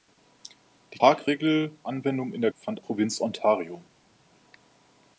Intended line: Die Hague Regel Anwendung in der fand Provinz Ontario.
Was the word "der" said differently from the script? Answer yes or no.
no